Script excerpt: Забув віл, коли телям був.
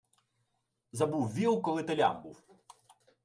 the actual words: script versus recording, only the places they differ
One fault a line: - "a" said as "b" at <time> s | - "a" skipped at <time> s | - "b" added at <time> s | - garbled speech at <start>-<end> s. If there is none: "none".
none